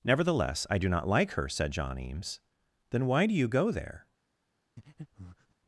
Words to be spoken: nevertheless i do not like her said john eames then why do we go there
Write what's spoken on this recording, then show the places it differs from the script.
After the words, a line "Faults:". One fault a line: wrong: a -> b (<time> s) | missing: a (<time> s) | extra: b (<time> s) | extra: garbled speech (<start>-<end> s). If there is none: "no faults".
nevertheless i do not like her said john eames then why do you go there
Faults:
wrong: we -> you (3.3 s)